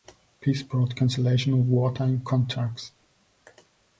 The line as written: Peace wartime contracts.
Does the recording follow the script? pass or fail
fail